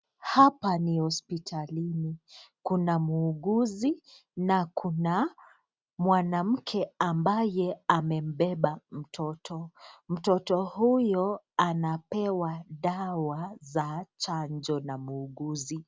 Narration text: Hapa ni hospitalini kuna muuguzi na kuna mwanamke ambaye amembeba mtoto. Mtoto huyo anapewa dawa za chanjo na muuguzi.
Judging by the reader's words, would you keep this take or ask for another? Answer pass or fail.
pass